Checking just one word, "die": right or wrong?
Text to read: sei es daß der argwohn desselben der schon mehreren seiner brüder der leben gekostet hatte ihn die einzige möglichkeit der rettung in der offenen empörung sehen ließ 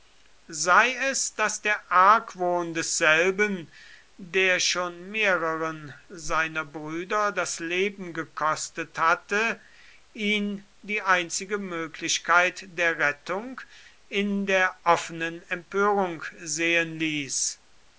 right